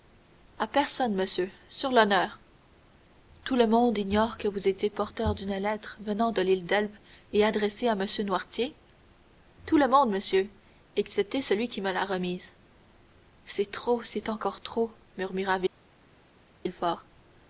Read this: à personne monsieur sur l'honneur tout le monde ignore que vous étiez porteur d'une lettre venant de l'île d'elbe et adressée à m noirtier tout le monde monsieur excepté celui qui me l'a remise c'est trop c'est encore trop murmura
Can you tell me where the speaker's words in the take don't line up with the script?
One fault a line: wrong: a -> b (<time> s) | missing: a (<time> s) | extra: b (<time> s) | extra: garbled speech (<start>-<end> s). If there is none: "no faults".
no faults